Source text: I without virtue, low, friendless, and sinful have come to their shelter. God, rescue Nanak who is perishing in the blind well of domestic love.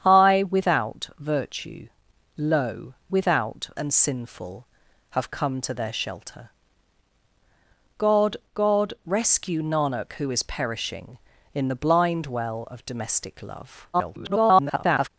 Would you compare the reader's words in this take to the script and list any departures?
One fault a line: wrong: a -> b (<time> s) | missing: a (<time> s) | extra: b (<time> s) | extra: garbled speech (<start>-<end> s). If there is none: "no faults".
wrong: friendless -> without (3.1 s)
extra: god (8.5 s)
extra: garbled speech (13.9-15.1 s)